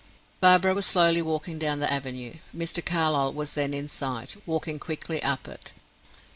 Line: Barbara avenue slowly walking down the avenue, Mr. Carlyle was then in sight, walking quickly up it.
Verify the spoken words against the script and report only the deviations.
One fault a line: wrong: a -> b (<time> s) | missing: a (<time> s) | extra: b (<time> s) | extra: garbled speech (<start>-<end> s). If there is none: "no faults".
wrong: avenue -> was (0.7 s)